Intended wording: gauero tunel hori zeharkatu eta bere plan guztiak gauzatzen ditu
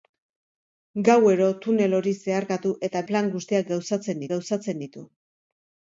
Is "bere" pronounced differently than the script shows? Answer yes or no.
yes